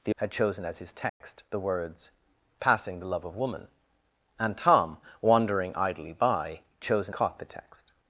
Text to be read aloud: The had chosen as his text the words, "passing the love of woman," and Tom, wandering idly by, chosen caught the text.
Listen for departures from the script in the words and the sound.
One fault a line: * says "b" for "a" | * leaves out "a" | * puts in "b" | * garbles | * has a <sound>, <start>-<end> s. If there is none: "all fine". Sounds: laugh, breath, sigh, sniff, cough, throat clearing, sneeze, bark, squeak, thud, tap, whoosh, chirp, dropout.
* has a dropout, 1.1-1.2 s